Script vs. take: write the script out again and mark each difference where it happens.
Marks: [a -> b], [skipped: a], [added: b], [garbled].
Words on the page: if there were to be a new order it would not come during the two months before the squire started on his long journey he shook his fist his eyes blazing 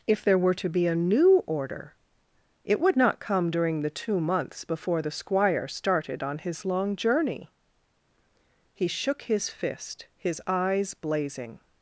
if there were to be a new order it would not come during the two months before the squire started on his long journey he shook his fist his eyes blazing